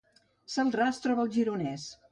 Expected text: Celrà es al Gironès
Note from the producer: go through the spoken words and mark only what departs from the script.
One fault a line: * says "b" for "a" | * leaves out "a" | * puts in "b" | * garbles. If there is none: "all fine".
* puts in "troba"